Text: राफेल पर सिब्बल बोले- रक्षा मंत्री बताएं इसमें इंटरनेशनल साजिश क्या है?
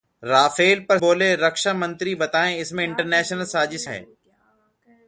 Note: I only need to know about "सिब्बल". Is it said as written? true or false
false